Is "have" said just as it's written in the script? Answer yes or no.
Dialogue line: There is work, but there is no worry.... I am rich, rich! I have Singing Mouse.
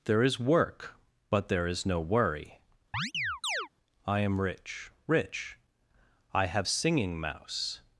yes